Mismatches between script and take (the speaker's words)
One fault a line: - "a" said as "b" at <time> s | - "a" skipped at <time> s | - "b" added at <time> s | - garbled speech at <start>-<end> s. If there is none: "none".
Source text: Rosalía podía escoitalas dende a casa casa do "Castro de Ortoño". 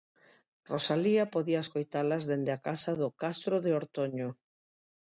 - "casa" skipped at 2.9 s